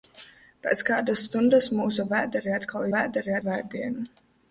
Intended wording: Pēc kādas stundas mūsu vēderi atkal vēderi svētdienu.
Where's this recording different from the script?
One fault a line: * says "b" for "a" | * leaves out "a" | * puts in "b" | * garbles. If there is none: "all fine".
all fine